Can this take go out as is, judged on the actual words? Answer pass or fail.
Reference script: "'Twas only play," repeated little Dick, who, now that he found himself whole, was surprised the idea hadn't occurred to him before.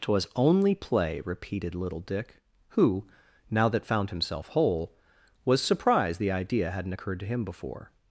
fail